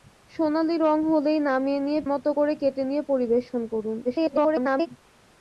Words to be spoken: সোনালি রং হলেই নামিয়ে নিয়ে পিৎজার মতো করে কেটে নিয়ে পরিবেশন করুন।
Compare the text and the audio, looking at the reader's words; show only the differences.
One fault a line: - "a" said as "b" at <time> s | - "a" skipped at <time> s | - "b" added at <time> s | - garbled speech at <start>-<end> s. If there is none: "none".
- "পিৎজার" skipped at 2.0 s
- garbled speech at 4.0-4.9 s